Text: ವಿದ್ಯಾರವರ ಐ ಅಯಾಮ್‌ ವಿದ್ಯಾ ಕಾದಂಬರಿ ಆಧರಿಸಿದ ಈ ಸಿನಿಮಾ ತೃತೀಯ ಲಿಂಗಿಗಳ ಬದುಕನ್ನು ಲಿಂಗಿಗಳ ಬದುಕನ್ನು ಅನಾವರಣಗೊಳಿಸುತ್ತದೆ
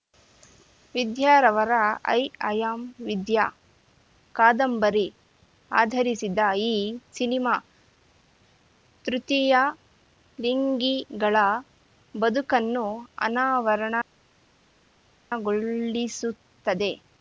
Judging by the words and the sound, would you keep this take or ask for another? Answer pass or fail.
fail